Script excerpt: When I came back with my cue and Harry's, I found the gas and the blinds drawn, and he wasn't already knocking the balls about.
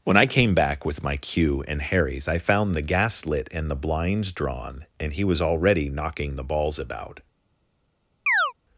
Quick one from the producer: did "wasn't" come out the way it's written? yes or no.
no